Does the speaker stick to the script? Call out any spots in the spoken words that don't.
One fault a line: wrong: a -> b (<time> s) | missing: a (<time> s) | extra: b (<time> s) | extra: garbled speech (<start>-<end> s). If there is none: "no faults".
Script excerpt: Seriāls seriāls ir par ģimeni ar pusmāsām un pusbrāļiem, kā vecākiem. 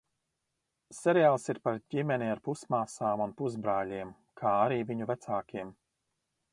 missing: seriāls (1.4 s)
extra: arī viņu (4.7 s)